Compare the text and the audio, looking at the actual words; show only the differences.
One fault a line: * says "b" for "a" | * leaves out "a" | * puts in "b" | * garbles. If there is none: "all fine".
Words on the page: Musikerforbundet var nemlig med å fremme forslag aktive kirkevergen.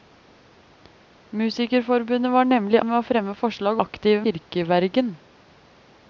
all fine